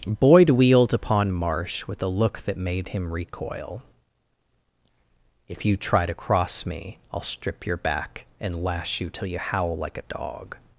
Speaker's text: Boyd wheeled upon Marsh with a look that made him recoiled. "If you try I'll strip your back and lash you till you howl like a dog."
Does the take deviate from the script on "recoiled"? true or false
true